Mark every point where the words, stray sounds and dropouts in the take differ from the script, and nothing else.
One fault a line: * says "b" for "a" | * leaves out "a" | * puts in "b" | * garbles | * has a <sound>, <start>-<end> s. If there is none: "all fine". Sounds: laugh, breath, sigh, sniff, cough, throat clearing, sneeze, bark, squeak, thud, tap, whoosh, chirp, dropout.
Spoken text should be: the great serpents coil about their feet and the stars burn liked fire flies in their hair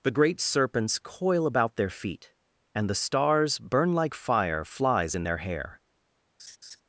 * says "like" for "liked"
* has a laugh, 6.4-6.8 s